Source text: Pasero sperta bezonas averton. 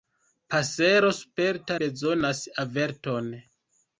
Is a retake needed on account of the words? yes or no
no